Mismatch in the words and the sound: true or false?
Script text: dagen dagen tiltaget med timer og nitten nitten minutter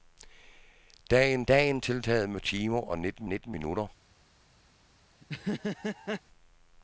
true